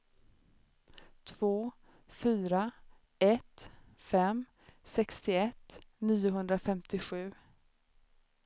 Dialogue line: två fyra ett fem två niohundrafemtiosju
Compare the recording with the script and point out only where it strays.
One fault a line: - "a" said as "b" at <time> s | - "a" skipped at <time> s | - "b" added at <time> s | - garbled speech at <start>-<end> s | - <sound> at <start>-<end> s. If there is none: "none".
- "två" said as "sextioett" at 4.8 s